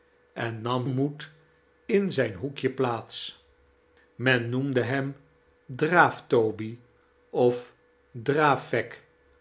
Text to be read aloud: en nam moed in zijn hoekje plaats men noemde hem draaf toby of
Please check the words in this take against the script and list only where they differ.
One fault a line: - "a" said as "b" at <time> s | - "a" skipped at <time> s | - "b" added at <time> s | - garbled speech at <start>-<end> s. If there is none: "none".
none